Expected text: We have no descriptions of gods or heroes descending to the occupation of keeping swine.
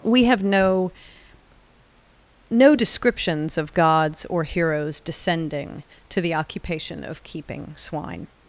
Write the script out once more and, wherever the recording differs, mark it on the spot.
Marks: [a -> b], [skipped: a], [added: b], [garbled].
We have no [added: no] descriptions of gods or heroes descending to the occupation of keeping swine.